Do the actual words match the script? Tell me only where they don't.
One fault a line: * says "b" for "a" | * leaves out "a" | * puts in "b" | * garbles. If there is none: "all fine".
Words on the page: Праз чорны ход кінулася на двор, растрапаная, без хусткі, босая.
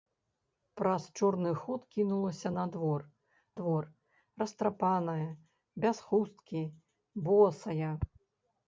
* puts in "двор"